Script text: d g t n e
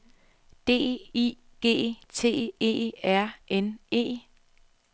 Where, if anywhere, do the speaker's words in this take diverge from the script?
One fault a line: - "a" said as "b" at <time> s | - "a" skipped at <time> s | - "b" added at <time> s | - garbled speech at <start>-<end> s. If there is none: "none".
- "i" added at 1.1 s
- "e r" added at 2.6 s